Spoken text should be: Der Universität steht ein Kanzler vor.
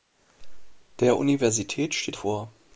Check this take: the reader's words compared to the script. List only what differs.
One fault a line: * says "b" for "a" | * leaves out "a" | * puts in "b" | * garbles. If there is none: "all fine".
* leaves out "ein Kanzler"